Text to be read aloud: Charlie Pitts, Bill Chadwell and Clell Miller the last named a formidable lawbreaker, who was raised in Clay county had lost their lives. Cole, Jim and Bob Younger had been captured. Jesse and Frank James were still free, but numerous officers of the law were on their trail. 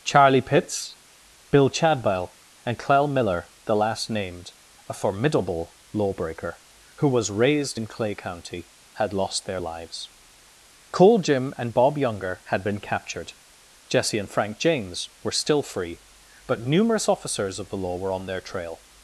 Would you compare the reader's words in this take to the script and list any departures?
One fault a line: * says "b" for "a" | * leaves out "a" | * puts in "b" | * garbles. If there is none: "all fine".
all fine